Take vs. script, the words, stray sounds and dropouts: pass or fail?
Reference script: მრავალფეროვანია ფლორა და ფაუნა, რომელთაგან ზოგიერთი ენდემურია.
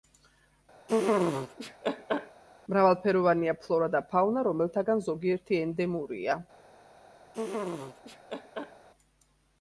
fail